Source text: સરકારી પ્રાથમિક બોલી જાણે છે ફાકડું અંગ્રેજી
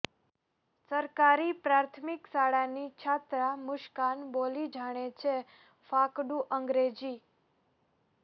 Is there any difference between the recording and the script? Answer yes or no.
yes